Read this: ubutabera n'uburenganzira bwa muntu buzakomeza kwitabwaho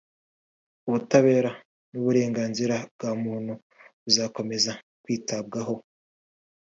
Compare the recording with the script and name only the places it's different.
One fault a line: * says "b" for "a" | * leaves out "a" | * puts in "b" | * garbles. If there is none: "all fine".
all fine